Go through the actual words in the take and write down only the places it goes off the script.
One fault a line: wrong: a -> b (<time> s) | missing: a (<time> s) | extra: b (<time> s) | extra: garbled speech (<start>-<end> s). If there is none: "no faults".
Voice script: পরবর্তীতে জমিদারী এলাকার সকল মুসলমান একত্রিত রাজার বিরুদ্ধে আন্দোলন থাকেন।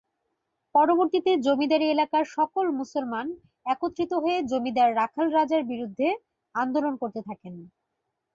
extra: হয়ে জমিদার রাখাল (4.2 s)
extra: করতে (7.0 s)